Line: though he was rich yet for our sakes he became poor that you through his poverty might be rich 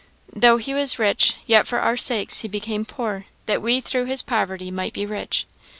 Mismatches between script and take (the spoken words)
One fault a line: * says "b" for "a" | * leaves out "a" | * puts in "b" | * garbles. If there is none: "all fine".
* says "we" for "you"